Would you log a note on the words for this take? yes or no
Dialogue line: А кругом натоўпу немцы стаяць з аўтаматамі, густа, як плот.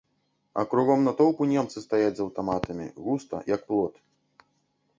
no